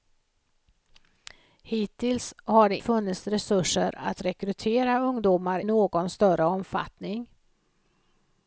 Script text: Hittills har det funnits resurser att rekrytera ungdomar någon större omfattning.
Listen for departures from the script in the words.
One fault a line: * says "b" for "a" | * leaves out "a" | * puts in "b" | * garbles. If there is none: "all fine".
all fine